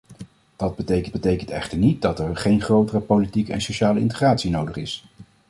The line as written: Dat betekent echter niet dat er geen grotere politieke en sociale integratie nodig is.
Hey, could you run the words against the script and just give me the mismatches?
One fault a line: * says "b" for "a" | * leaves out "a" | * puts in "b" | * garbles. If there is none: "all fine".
* puts in "betekent"